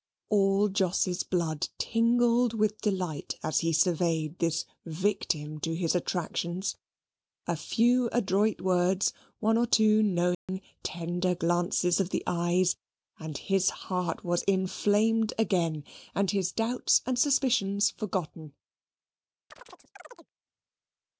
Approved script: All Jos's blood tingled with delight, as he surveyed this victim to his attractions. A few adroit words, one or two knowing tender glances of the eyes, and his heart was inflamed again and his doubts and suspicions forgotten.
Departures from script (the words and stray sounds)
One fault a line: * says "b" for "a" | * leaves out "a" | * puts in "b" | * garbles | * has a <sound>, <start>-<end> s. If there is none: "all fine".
* has a dropout, 10.3-10.5 s
* has a chirp, 19.5-20.3 s